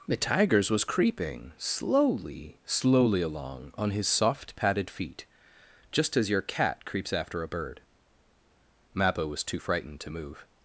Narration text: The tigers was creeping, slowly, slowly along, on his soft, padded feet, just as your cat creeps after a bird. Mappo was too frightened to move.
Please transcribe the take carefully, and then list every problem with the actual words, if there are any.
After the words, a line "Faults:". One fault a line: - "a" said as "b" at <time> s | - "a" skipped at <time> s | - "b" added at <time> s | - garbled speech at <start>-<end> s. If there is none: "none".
The tigers was creeping, slowly, slowly along, on his soft, padded feet, just as your cat creeps after a bird. Mappo was too frightened to move.
Faults:
none